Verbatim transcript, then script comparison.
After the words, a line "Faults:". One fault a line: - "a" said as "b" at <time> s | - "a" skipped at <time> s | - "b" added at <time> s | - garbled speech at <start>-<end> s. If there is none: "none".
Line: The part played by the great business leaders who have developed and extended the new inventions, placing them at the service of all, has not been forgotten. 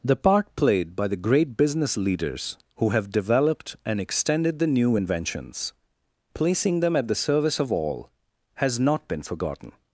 The part played by the great business leaders who have developed and extended the new inventions, placing them at the service of all, has not been forgotten.
Faults:
none